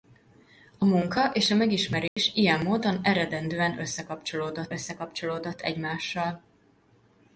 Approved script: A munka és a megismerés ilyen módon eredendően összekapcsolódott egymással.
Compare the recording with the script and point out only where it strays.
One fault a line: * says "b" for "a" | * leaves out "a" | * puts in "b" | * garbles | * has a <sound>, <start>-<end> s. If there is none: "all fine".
* has a dropout, 2.1-2.2 s
* puts in "összekapcsolódott"